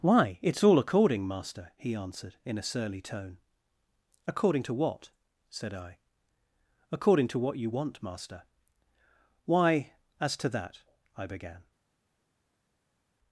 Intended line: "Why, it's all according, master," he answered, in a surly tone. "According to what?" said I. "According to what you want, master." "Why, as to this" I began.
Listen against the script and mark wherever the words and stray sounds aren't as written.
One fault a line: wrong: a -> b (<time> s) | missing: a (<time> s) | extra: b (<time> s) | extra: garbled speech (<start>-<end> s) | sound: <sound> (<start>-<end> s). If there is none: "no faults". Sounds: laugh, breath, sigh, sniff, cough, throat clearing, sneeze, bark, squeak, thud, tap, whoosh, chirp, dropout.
wrong: this -> that (10.5 s)